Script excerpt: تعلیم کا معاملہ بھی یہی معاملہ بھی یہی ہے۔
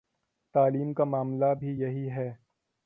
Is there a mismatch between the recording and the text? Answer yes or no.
yes